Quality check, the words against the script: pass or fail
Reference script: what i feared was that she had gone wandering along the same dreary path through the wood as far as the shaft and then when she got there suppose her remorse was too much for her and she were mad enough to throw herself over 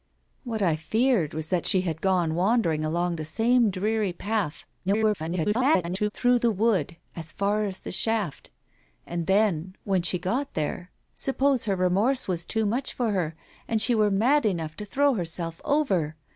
fail